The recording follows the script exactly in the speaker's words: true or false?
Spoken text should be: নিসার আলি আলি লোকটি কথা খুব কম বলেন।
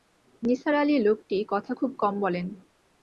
false